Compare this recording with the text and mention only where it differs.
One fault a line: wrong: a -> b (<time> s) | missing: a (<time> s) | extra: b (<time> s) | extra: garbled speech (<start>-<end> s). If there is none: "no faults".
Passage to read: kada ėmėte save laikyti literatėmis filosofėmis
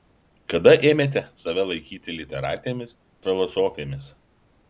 no faults